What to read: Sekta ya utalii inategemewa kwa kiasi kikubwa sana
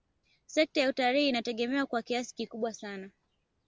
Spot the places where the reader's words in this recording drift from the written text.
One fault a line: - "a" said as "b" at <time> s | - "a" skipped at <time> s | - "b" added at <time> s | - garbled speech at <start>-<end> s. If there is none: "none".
none